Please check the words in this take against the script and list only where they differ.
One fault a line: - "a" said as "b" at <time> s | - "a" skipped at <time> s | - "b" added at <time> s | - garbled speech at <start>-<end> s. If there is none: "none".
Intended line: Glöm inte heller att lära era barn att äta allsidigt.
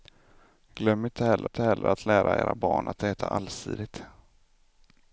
- "inte heller" added at 1.4 s